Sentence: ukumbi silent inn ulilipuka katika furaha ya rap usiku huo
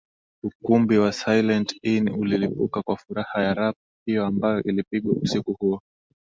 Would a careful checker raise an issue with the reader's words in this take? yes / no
yes